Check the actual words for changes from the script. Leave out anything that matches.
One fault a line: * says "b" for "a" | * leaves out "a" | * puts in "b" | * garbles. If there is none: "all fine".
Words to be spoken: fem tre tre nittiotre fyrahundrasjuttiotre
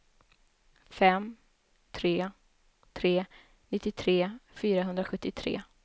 all fine